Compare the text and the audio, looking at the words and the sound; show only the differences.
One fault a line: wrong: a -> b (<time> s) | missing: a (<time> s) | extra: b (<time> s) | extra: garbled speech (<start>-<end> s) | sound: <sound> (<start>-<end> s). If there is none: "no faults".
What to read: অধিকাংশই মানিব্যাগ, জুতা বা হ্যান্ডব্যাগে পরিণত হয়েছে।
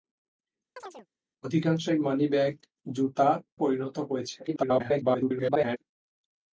sound: chirp (0.8-1.1 s)
missing: বা হ্যান্ডব্যাগে (3.3 s)
extra: garbled speech (4.5-5.8 s)